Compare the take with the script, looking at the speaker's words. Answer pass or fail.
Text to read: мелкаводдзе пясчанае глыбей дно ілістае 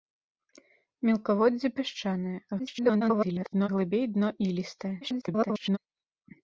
fail